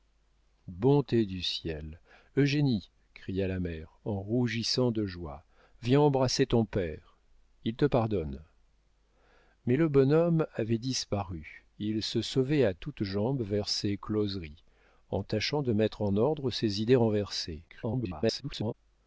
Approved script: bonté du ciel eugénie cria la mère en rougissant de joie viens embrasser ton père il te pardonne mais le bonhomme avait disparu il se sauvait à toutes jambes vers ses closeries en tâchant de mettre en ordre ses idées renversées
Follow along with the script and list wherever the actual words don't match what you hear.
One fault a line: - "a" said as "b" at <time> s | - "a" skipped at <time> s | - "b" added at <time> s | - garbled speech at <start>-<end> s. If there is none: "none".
- garbled speech at 17.7-18.7 s